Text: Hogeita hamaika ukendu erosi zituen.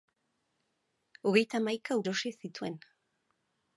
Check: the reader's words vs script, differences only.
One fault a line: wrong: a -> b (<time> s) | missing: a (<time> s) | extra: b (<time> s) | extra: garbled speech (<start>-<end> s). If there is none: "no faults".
missing: ukendu (2.0 s)